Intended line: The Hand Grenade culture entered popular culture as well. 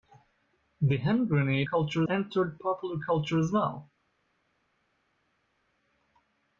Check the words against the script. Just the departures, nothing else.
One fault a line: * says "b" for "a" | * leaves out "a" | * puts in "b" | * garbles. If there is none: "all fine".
all fine